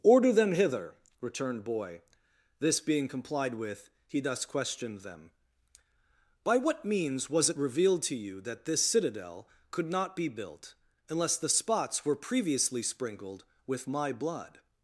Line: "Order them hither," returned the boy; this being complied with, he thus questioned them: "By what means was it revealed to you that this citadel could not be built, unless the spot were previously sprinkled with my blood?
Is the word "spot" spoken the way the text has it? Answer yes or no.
no